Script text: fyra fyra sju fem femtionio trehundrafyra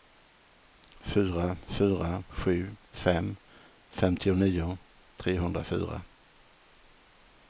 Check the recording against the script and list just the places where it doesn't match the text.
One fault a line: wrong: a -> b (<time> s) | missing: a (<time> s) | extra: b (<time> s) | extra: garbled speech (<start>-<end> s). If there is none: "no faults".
no faults